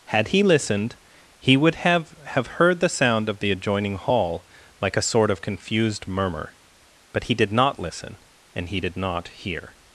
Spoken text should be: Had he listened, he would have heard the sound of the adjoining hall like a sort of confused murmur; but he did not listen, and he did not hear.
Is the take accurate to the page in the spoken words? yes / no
no